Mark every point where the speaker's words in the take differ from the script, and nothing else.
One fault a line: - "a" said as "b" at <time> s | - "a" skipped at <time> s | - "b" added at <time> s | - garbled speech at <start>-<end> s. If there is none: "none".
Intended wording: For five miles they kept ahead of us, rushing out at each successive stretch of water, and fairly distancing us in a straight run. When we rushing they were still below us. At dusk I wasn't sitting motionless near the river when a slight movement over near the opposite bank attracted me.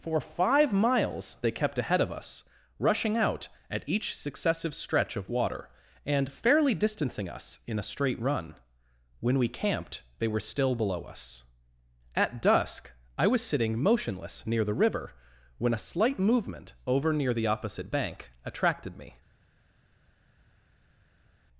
- "rushing" said as "camped" at 9.5 s
- "wasn't" said as "was" at 13.3 s